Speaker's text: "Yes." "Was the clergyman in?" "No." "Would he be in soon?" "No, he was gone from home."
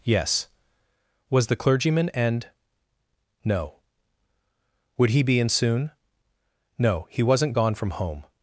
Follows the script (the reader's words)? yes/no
no